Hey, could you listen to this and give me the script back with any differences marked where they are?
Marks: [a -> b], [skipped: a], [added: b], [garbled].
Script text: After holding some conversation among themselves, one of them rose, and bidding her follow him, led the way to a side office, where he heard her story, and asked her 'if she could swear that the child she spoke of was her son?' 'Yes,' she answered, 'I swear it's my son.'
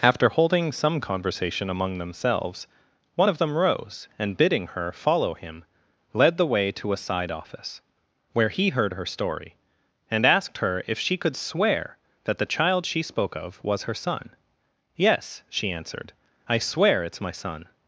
After holding some conversation among themselves, one of them rose, and bidding her follow him, led the way to a side office, where he heard her story, and asked her 'if she could swear that the child she spoke of was her son?' 'Yes,' she answered, 'I swear it's my son.'